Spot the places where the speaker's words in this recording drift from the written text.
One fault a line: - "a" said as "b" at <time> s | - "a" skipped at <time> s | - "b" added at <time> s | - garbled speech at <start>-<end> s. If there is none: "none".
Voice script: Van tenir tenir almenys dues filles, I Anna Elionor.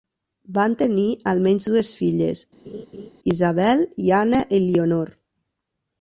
- "tenir" skipped at 1.1 s
- "Isabel" added at 3.3 s